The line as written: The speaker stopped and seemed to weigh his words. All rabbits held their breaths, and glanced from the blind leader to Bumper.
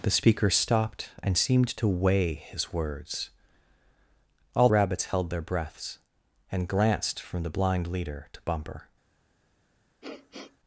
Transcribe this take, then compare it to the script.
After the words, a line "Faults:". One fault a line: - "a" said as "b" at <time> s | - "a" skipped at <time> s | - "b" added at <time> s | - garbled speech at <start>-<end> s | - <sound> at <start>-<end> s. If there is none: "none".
The speaker stopped and seemed to weigh his words. All rabbits held their breaths, and glanced from the blind leader to Bumper.
Faults:
- sniff at 10.0-10.6 s